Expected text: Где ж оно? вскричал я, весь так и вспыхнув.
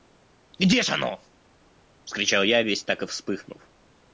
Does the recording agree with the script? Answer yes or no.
yes